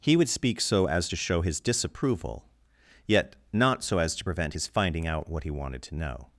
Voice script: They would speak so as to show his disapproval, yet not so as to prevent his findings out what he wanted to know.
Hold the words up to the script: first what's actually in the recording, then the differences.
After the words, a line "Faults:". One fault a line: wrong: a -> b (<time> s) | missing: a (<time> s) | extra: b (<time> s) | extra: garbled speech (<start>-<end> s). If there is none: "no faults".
He would speak so as to show his disapproval, yet not so as to prevent his finding out what he wanted to know.
Faults:
wrong: They -> He (0.0 s)
wrong: findings -> finding (4.7 s)